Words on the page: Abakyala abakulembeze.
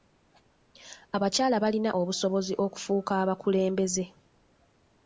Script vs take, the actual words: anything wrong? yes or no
yes